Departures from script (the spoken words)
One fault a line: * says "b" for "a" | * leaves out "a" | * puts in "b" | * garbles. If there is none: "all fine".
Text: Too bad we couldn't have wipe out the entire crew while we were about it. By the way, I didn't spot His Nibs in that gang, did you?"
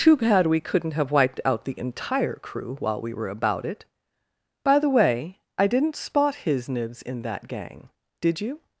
* says "wiped" for "wipe"